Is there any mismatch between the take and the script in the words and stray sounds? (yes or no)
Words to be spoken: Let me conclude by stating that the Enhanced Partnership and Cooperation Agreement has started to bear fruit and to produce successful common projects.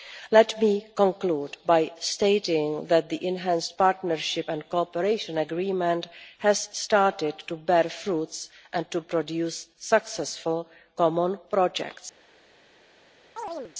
yes